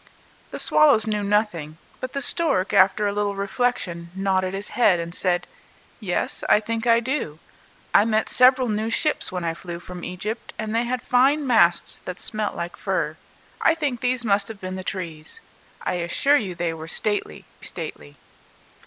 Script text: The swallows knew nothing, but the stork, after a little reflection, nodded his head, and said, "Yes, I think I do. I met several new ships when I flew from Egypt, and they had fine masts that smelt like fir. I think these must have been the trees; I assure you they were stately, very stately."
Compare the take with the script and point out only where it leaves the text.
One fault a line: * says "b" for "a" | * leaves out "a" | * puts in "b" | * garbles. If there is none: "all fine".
* leaves out "very"